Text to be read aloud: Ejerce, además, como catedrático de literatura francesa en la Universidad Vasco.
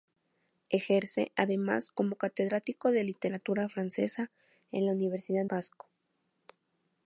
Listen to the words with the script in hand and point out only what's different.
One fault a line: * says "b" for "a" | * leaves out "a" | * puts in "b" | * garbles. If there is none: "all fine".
all fine